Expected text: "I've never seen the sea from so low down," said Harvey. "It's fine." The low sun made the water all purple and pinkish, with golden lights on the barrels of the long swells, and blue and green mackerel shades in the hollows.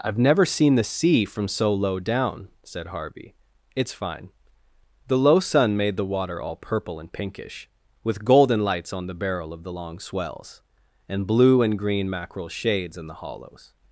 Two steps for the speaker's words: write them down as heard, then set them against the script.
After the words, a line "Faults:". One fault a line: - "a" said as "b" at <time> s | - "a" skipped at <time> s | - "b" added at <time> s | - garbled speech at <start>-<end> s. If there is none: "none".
"I've never seen the sea from so low down," said Harvey. "It's fine." The low sun made the water all purple and pinkish, with golden lights on the barrel of the long swells, and blue and green mackerel shades in the hollows.
Faults:
- "barrels" said as "barrel" at 9.1 s